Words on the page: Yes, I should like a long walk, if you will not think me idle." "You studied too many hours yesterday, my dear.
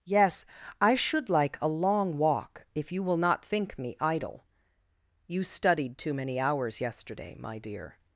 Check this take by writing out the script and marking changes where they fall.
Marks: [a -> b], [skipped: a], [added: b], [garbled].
Yes, I should like a long walk, if you will not think me idle." "You studied too many hours yesterday, my dear.